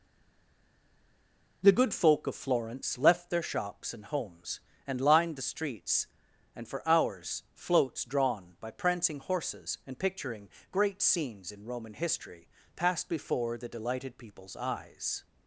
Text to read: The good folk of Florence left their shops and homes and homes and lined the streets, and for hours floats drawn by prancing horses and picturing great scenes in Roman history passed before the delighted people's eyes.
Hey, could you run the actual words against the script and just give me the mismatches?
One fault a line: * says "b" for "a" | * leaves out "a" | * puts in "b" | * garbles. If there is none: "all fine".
* leaves out "homes and"